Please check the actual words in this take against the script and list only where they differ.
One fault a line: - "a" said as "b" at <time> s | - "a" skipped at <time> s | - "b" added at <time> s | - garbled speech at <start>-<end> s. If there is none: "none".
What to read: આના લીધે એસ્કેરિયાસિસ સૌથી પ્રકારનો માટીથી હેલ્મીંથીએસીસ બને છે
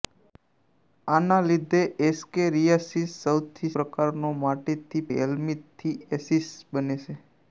none